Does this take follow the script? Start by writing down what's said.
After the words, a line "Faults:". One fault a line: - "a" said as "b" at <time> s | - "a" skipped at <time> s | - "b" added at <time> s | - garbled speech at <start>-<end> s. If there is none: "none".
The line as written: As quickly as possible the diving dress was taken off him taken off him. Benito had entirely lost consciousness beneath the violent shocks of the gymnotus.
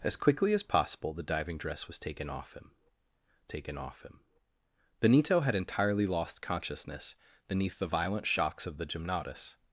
As quickly as possible the diving dress was taken off him taken off him. Benito had entirely lost consciousness beneath the violent shocks of the gymnotus.
Faults:
none